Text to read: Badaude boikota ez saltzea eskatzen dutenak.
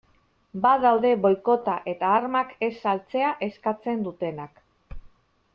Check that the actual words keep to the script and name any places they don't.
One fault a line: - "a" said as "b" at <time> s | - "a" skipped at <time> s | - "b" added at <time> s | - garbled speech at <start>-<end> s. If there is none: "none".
- "eta armak" added at 1.9 s